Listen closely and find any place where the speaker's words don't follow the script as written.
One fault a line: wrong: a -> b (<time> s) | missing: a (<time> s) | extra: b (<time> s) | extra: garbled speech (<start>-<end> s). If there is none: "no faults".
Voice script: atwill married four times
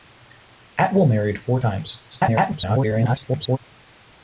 extra: garbled speech (2.1-3.6 s)